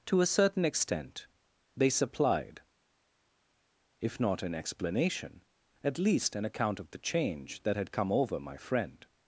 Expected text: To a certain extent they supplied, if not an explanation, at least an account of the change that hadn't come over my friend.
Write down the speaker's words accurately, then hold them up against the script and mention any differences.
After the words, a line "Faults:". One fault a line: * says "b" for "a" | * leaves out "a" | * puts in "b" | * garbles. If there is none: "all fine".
To a certain extent they supplied, if not an explanation, at least an account of the change that had come over my friend.
Faults:
* says "had" for "hadn't"